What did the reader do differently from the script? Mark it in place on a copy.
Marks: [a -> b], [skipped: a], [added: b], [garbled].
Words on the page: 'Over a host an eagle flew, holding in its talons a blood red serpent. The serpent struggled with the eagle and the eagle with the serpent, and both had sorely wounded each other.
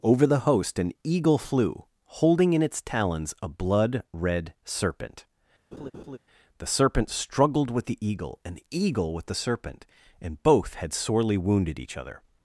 'Over [a -> the] host an eagle flew, holding in its talons a blood red serpent. The serpent struggled with the eagle and the eagle with the serpent, and both had sorely wounded each other.